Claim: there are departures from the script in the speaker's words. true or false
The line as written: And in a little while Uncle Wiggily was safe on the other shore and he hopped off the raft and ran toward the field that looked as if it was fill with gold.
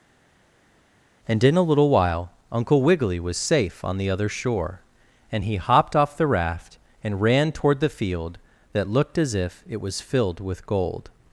true